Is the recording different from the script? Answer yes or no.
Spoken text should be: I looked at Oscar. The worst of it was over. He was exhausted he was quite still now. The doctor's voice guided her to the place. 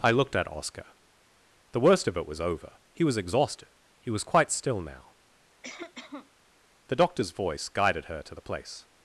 no